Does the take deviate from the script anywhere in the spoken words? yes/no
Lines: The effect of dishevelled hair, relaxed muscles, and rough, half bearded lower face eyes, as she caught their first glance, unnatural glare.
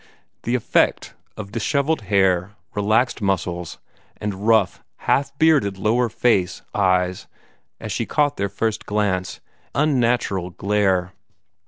no